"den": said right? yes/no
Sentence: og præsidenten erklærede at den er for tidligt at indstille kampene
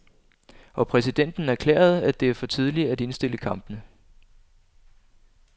no